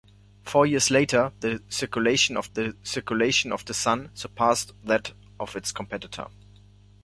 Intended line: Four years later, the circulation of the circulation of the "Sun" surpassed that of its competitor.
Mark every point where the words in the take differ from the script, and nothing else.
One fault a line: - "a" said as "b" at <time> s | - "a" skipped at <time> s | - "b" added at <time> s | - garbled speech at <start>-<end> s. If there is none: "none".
none